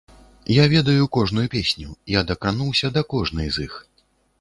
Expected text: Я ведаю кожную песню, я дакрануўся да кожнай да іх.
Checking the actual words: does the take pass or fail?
fail